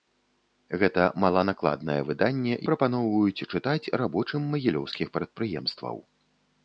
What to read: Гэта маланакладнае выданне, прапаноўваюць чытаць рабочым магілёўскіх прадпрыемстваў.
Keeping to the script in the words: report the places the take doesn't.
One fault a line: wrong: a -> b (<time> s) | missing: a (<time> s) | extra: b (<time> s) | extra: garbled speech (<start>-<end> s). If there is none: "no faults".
no faults